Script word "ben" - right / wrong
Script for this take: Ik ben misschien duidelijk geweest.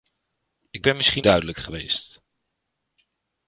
right